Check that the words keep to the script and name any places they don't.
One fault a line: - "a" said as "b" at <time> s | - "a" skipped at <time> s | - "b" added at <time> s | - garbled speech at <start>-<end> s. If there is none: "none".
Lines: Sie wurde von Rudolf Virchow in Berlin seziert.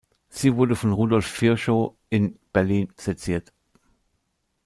none